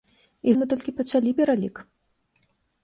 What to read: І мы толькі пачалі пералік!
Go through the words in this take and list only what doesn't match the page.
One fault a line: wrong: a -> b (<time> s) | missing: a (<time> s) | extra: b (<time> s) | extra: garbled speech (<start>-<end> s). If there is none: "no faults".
no faults